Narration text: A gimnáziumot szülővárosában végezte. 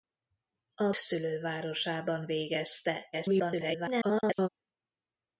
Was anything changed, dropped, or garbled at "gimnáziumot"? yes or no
yes